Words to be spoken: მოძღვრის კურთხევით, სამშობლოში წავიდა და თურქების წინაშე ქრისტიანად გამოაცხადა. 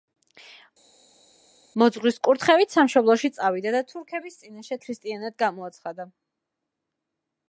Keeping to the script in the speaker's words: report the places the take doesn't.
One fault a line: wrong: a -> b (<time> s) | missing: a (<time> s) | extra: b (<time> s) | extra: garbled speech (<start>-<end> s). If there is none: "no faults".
no faults